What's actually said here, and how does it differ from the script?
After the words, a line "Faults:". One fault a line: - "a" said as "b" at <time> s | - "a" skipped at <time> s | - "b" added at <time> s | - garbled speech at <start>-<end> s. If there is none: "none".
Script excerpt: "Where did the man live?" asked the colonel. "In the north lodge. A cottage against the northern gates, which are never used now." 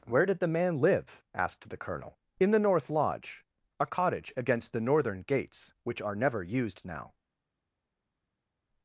"Where did the man live?" asked the colonel. "In the north lodge. A cottage against the northern gates, which are never used now."
Faults:
none